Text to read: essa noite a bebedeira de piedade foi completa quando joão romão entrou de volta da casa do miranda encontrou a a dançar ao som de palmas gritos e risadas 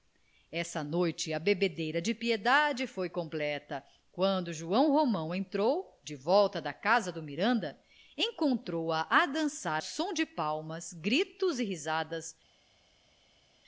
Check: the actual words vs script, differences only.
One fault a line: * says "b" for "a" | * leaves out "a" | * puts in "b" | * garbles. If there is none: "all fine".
* leaves out "ao"